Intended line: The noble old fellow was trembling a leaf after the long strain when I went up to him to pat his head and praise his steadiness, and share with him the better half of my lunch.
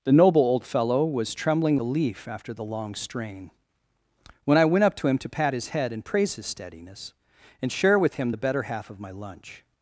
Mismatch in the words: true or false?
false